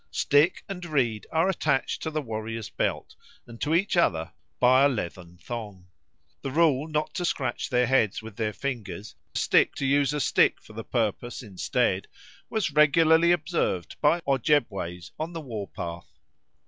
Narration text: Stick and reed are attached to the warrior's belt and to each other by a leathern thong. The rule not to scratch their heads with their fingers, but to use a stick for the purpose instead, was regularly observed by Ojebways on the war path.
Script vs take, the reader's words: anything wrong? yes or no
yes